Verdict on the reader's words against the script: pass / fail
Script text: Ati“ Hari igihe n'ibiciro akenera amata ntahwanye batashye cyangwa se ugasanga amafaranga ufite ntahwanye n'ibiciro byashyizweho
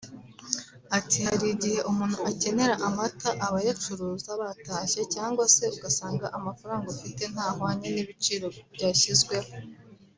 fail